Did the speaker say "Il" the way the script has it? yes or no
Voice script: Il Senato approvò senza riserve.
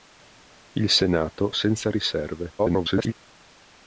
yes